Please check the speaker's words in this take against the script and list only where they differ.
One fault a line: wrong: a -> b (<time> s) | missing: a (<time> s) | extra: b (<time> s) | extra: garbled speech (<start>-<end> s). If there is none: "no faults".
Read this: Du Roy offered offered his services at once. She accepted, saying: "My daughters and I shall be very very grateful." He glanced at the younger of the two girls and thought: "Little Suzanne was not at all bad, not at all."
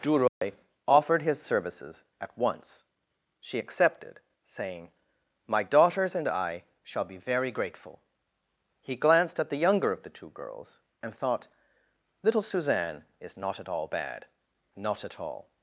missing: offered (1.2 s)
missing: very (7.5 s)
wrong: was -> is (13.2 s)